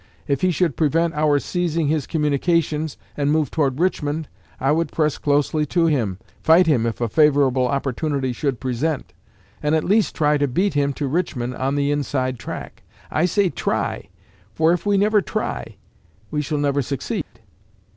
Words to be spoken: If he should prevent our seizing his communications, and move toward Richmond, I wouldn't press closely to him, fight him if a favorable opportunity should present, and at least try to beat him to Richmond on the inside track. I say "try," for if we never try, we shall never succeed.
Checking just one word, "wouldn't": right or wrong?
wrong